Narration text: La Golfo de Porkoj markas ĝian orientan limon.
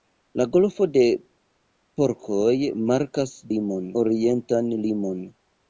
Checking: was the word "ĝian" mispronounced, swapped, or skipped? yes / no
yes